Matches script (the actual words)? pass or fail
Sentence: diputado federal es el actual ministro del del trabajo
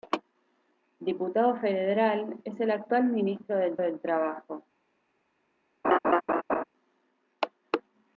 pass